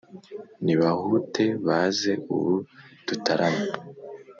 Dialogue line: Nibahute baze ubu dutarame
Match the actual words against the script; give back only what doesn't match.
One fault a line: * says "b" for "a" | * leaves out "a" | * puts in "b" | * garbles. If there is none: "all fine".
all fine